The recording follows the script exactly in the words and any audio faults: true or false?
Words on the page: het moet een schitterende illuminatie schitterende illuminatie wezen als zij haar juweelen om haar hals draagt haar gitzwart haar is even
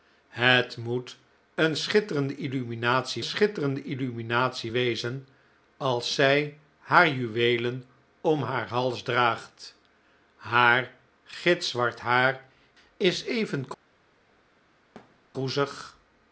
false